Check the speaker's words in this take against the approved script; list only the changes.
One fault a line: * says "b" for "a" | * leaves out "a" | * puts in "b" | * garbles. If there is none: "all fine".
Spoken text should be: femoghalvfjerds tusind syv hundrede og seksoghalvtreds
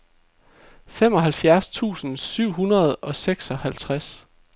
all fine